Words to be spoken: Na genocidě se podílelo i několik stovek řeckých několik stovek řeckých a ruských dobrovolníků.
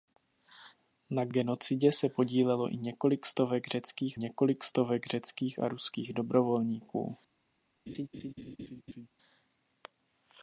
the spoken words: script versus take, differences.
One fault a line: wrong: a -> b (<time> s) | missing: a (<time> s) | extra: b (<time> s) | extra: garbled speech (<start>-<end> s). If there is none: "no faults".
no faults